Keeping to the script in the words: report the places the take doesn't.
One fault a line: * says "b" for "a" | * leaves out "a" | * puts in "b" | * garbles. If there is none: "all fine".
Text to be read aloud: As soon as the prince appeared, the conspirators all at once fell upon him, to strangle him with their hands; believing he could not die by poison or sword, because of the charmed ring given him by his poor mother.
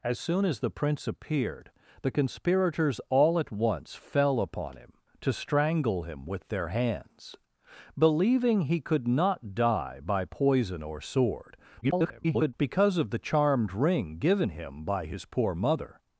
* garbles